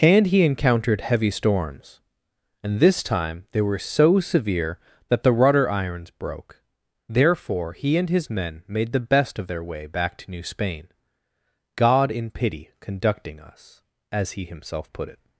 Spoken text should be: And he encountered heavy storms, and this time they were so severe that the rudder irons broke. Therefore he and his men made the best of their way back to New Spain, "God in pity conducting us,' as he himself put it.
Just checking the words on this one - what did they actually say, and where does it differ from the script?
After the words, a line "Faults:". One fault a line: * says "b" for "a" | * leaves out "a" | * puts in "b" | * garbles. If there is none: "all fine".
And he encountered heavy storms, and this time they were so severe that the rudder irons broke. Therefore he and his men made the best of their way back to New Spain, "God in pity conducting us,' as he himself put it.
Faults:
all fine